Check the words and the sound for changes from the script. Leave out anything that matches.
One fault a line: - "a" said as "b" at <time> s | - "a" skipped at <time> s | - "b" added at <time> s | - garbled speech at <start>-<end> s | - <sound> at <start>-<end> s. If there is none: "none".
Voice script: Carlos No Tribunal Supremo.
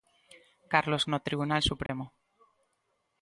- dropout at 1.9-1.9 s